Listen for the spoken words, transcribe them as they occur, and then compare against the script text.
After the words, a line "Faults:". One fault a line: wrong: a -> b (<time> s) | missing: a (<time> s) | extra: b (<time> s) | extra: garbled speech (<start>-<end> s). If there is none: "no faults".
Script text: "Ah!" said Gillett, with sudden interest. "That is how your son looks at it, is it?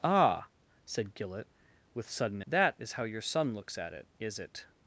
"Ah!" said Gillett, with sudden. "That is how your son looks at it, is it?
Faults:
missing: interest (2.4 s)